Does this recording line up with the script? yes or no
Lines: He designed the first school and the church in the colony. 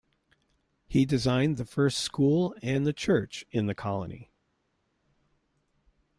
yes